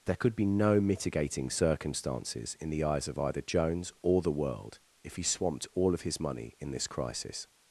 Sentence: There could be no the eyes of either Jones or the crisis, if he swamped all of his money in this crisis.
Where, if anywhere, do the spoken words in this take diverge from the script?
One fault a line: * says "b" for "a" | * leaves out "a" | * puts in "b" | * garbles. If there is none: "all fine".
* puts in "mitigating circumstances in"
* says "world" for "crisis"